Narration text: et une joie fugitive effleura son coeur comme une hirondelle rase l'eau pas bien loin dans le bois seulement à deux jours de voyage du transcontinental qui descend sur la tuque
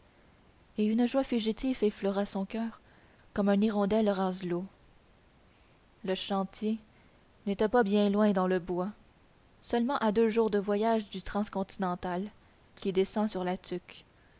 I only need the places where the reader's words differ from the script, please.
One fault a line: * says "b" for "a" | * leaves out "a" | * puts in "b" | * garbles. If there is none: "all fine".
* puts in "le chantier n'était"